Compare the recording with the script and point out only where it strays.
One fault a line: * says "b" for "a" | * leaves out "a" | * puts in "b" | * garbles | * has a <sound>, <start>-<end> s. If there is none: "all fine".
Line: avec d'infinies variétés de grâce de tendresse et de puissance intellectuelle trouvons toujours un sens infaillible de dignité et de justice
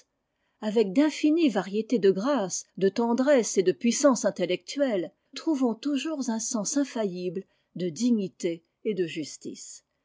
all fine